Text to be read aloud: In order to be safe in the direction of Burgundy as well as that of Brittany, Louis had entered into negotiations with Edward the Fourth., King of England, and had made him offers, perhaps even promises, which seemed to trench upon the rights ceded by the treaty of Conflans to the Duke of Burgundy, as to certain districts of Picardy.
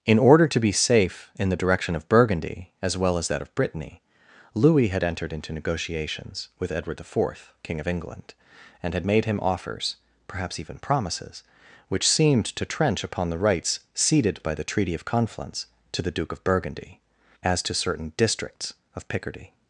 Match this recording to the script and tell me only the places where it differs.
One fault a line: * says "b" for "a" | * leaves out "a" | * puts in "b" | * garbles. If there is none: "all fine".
all fine